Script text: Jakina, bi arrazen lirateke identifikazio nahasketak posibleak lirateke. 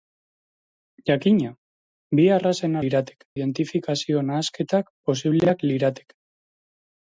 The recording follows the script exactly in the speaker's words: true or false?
true